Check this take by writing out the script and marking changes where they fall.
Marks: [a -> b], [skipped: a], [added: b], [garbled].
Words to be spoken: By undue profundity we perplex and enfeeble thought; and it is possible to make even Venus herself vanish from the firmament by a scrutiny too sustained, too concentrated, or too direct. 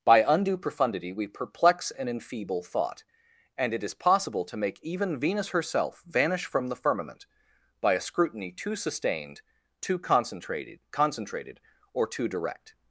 By undue profundity we perplex and enfeeble thought; and it is possible to make even Venus herself vanish from the firmament by a scrutiny too sustained, too concentrated, [added: concentrated] or too direct.